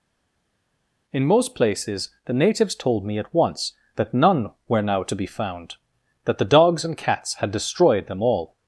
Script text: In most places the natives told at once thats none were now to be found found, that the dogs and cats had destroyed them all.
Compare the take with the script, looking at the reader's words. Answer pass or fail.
fail